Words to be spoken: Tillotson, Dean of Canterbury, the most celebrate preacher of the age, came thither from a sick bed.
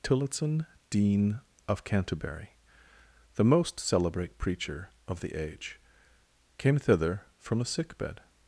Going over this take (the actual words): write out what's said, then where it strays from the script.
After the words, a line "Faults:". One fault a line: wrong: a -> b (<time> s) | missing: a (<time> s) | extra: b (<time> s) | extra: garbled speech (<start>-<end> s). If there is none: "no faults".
Tillotson, Dean of Canterbury, the most celebrate preacher of the age, came thither from a sick bed.
Faults:
no faults